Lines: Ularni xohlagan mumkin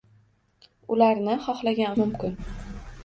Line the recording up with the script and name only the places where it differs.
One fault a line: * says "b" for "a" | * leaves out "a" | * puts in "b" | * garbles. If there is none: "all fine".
all fine